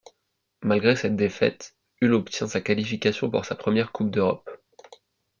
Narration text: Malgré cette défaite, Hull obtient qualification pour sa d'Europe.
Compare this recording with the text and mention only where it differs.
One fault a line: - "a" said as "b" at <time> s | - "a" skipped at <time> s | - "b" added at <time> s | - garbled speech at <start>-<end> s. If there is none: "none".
- "sa" added at 2.5 s
- "première coupe" added at 3.5 s